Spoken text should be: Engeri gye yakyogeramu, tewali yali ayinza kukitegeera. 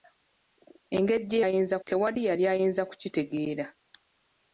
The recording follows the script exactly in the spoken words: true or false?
false